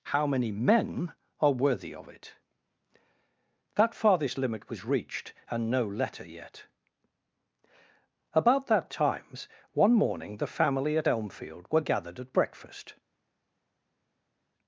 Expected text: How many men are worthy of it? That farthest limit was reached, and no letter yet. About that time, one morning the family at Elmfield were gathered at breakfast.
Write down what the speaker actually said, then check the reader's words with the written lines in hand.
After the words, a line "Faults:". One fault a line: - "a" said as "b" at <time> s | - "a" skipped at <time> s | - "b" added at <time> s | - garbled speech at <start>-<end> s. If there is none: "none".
How many men are worthy of it? That farthest limit was reached, and no letter yet. About that times, one morning the family at Elmfield were gathered at breakfast.
Faults:
- "time" said as "times" at 8.9 s